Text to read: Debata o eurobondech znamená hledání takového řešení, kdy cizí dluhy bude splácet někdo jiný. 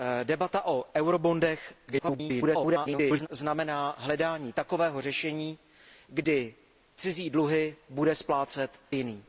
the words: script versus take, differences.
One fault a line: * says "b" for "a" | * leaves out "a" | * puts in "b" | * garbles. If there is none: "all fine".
* garbles
* leaves out "někdo"